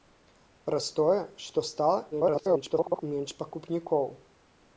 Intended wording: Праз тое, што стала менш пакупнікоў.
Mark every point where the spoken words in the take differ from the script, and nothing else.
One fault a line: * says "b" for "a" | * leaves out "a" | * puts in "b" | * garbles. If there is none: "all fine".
* garbles